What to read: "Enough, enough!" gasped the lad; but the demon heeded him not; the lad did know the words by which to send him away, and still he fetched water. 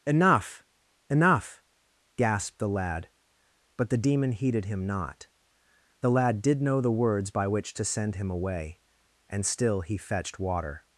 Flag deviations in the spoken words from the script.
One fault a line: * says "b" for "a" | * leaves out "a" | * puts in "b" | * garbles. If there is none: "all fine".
all fine